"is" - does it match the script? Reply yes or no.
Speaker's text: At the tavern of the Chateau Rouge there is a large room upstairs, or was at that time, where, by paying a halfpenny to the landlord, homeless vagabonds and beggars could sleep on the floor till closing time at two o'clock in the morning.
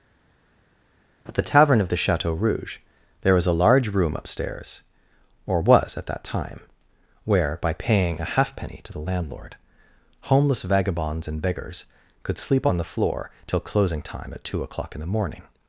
no